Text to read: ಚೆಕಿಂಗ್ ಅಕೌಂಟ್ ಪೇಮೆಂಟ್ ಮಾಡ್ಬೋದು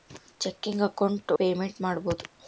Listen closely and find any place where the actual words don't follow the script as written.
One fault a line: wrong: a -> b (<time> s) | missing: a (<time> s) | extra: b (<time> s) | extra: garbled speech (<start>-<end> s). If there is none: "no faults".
no faults